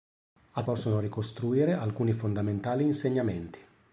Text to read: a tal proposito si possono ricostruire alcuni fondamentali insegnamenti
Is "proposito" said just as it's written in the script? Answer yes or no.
no